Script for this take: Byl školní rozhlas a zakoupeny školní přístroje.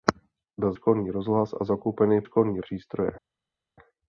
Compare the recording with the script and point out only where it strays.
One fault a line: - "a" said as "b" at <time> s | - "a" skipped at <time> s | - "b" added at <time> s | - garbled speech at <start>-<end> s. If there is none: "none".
none